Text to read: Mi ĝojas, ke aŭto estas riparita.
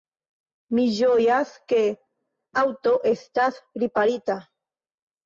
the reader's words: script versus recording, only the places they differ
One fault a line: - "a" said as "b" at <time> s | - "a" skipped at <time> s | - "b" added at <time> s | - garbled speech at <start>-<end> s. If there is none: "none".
none